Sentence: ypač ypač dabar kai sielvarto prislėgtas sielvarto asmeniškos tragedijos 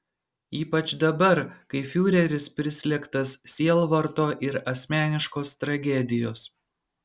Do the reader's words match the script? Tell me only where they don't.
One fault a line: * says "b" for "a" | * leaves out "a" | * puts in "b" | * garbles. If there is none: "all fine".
* leaves out "ypač"
* says "fiureris" for "sielvarto"
* puts in "ir"